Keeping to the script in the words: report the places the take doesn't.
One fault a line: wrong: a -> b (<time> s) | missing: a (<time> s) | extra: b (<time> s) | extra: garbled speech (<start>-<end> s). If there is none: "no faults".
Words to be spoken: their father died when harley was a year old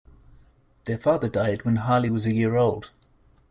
no faults